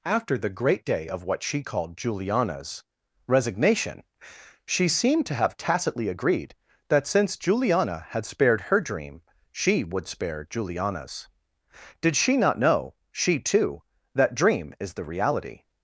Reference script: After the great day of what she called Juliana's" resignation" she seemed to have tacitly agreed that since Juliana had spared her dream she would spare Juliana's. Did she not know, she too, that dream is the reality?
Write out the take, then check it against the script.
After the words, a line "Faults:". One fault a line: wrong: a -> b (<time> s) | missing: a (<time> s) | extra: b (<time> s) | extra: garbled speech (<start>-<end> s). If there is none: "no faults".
After the great day of what she called Juliana's" resignation" she seemed to have tacitly agreed that since Juliana had spared her dream she would spare Juliana's. Did she not know, she too, that dream is the reality?
Faults:
no faults